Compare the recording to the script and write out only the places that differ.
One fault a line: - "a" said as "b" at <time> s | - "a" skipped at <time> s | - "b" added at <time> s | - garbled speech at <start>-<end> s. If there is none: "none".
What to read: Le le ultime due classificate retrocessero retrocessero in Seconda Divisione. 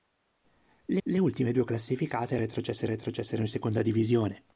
none